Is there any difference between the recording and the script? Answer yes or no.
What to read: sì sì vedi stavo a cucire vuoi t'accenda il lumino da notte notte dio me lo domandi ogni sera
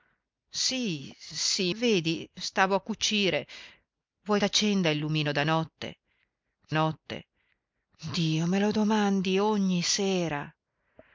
no